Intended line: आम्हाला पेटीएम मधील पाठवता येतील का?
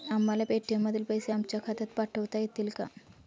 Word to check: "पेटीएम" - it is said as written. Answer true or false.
true